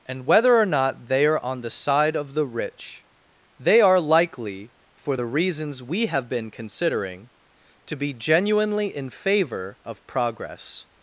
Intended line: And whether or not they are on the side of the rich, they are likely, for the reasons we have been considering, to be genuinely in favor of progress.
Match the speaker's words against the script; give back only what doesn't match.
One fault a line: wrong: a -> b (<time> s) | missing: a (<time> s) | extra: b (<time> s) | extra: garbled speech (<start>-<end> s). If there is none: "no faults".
no faults